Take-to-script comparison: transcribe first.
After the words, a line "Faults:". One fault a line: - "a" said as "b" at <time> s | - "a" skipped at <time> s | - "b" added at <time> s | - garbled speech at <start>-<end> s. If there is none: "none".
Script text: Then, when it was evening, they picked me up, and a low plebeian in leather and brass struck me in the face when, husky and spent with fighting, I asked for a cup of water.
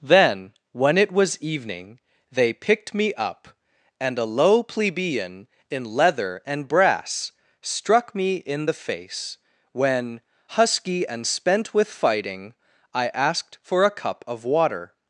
Then, when it was evening, they picked me up, and a low plebeian in leather and brass struck me in the face when, husky and spent with fighting, I asked for a cup of water.
Faults:
none